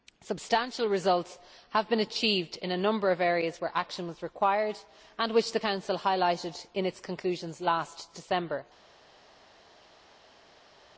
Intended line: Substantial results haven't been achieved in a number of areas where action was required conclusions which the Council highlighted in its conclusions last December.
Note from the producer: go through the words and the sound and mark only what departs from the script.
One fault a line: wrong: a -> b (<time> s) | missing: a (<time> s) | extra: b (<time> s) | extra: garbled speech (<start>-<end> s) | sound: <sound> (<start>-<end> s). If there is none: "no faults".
wrong: haven't -> have (1.7 s)
wrong: conclusions -> and (5.2 s)